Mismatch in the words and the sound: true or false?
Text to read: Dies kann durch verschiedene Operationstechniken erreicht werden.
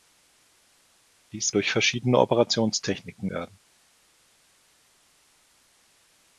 true